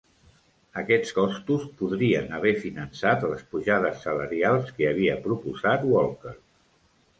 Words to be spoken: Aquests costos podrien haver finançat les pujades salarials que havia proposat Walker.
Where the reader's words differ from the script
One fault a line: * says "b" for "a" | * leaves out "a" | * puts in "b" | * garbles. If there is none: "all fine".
all fine